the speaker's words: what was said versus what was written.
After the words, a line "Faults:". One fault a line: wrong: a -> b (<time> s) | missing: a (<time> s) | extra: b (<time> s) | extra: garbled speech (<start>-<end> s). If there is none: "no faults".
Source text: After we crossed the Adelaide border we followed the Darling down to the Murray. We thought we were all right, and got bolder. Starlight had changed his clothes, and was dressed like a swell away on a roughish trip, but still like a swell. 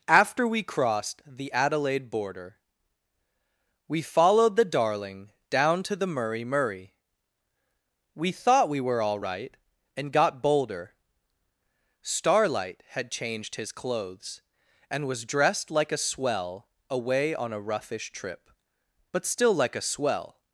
After we crossed the Adelaide border we followed the Darling down to the Murray Murray. We thought we were all right, and got bolder. Starlight had changed his clothes, and was dressed like a swell away on a roughish trip, but still like a swell.
Faults:
extra: Murray (6.5 s)